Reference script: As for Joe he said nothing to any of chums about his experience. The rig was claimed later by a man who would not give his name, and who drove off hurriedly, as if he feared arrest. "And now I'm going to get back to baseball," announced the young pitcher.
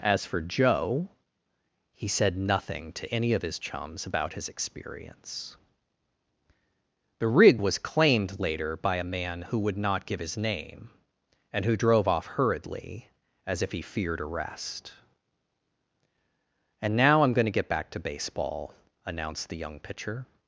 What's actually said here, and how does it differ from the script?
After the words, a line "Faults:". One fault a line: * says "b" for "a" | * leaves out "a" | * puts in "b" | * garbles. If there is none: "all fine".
As for Joe he said nothing to any of his chums about his experience. The rig was claimed later by a man who would not give his name, and who drove off hurriedly, as if he feared arrest. "And now I'm going to get back to baseball," announced the young pitcher.
Faults:
* puts in "his"